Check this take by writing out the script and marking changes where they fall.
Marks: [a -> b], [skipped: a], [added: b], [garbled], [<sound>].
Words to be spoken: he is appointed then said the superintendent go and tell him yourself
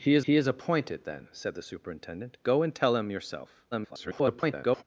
he is [added: he is] appointed then said the superintendent go and tell him yourself [garbled]